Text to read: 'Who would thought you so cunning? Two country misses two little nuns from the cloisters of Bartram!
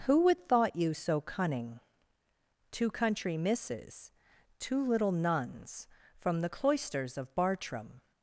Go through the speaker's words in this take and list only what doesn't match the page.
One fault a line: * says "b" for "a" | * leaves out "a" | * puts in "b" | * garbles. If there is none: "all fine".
all fine